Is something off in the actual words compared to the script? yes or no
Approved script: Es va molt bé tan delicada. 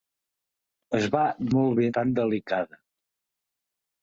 no